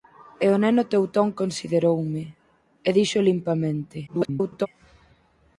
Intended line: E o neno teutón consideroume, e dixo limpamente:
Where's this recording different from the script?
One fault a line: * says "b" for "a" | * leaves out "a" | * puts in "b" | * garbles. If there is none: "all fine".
* garbles